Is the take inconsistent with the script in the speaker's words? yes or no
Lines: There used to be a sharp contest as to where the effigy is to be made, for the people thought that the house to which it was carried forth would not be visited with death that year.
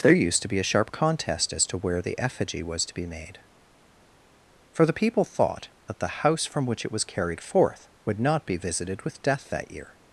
yes